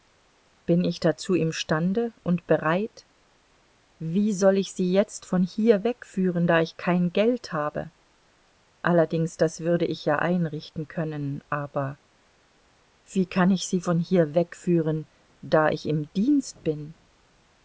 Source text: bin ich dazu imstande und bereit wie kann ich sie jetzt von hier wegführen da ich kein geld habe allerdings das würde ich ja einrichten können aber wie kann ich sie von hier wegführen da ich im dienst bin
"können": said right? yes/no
yes